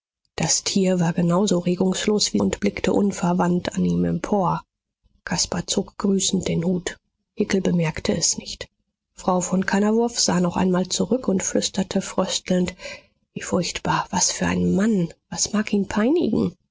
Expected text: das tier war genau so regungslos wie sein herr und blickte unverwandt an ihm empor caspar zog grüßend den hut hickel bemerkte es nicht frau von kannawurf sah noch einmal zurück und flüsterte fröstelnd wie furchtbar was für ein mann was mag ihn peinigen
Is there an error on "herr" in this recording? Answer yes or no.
yes